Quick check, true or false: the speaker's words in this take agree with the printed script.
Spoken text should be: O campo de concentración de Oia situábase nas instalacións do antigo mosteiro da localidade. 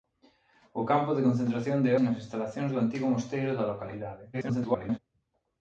false